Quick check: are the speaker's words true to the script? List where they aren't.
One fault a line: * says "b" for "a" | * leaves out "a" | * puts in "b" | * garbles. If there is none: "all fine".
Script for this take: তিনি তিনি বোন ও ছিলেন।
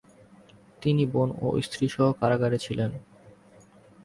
* leaves out "তিনি"
* puts in "স্ত্রীসহ কারাগারে"